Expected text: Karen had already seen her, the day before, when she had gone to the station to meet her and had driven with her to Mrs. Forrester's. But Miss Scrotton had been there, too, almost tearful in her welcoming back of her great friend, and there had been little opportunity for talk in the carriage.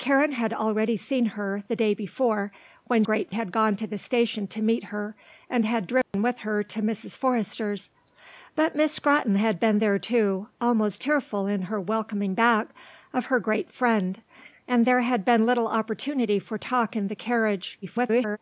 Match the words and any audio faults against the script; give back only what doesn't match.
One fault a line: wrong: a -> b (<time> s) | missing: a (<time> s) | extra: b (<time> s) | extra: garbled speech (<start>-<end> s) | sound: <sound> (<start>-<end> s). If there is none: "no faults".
wrong: she -> great (3.0 s)
sound: dropout (6.0-6.1 s)
extra: garbled speech (17.8-18.4 s)